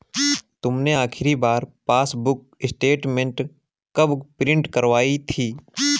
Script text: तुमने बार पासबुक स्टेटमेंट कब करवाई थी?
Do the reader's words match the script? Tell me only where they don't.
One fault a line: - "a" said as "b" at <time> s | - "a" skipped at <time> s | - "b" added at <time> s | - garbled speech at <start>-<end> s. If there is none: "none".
- "आखिरी" added at 0.9 s
- "प्रिन्ट" added at 4.4 s